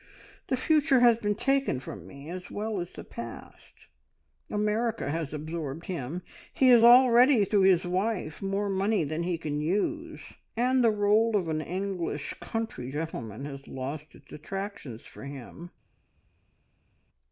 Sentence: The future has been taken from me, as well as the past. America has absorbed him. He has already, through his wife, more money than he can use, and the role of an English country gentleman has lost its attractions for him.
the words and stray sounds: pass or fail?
pass